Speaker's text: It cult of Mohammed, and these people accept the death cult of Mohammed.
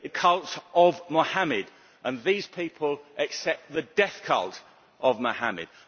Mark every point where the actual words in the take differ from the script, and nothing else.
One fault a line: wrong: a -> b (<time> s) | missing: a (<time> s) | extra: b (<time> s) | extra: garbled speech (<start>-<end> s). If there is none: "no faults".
no faults